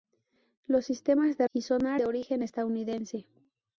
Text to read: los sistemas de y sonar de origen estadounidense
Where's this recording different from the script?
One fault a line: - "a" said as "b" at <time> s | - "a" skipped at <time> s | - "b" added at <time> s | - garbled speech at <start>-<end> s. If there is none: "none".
none